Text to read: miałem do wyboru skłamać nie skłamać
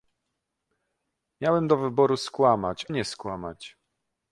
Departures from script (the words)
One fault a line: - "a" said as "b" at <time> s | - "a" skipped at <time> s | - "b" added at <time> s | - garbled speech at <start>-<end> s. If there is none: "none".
none